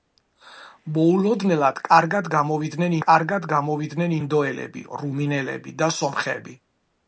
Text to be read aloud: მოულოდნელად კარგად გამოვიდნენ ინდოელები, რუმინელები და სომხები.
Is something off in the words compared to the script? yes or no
yes